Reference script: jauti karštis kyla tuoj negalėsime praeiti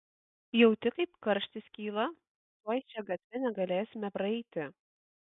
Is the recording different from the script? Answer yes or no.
yes